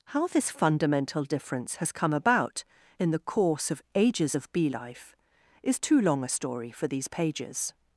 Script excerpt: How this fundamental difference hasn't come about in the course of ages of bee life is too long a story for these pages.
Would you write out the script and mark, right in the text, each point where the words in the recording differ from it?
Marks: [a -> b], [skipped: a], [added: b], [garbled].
How this fundamental difference [hasn't -> has] come about in the course of ages of bee life is too long a story for these pages.